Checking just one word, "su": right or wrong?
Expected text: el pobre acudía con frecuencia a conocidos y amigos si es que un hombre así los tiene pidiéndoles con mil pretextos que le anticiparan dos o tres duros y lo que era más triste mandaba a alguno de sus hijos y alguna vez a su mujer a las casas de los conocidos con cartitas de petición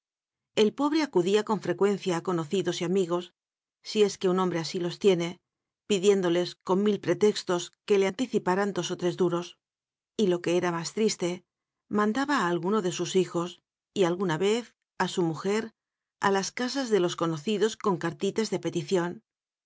right